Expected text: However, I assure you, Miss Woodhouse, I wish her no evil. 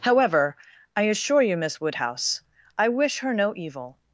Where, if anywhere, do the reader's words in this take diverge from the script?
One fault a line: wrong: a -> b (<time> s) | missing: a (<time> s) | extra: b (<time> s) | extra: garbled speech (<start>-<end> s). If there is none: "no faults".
no faults